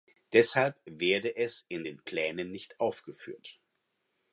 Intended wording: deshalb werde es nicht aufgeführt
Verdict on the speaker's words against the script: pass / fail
fail